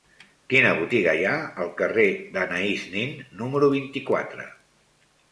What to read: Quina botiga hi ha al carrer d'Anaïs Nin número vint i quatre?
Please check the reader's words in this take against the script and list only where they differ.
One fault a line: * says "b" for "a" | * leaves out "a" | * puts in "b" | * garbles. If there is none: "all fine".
all fine